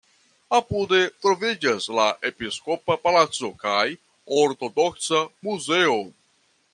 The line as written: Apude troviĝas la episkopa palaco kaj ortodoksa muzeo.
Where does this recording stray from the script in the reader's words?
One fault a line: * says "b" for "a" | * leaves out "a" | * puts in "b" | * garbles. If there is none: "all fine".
all fine